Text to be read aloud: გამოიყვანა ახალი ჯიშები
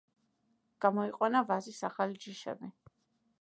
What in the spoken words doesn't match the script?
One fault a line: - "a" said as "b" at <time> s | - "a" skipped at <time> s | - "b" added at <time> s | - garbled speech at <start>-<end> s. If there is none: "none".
- "ვაზის" added at 1.5 s